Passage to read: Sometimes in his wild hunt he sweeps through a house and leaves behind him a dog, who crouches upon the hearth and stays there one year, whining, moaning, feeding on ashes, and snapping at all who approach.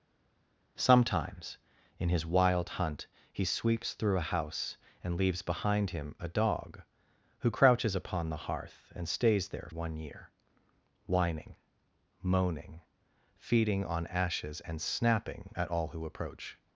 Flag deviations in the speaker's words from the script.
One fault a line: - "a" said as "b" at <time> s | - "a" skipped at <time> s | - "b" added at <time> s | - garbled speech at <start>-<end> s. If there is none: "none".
none